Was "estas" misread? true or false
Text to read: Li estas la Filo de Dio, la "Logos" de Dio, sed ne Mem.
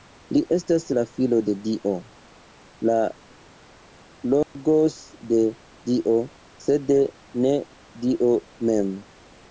false